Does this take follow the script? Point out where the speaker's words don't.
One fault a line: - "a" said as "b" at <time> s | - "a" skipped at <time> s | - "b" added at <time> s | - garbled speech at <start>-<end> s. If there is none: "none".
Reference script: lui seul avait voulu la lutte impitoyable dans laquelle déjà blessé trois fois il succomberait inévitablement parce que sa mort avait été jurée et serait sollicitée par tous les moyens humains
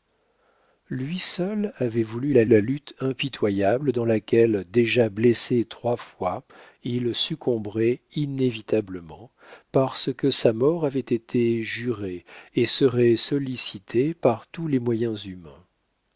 - "la" added at 2.5 s